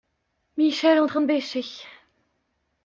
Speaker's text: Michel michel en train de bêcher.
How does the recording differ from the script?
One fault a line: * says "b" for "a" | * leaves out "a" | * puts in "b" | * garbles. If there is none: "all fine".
* leaves out "michel"